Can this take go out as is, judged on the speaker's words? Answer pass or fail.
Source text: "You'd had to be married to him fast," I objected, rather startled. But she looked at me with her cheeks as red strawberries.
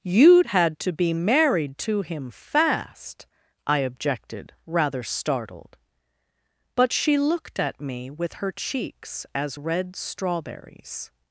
pass